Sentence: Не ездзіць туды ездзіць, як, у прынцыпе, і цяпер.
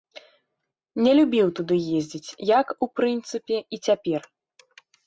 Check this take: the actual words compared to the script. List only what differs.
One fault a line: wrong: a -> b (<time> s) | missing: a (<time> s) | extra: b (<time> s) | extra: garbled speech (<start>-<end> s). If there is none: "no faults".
wrong: ездзіць -> любіў (1.2 s)